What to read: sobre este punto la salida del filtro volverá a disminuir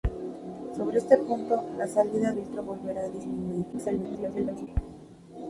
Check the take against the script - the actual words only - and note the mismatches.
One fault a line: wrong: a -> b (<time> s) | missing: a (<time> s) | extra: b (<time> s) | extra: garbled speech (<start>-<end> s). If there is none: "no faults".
missing: del (2.3 s)
extra: garbled speech (3.7-4.7 s)